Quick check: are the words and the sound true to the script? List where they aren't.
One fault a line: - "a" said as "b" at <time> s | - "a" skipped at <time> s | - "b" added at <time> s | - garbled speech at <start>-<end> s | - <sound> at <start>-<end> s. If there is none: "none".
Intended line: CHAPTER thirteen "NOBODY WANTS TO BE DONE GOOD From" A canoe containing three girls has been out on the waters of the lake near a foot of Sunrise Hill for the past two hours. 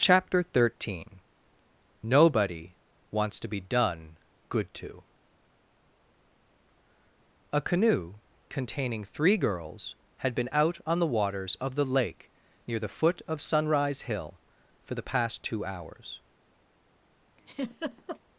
- "From" said as "TO" at 4.7 s
- "has" said as "had" at 10.2 s
- "a" said as "the" at 12.8 s
- laugh at 17.4-18.2 s